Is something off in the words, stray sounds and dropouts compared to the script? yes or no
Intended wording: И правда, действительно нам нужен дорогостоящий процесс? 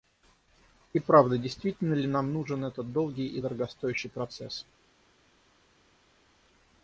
yes